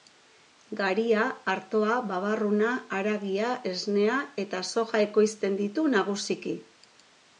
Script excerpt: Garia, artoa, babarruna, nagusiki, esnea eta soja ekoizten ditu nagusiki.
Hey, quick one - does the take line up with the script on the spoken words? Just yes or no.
no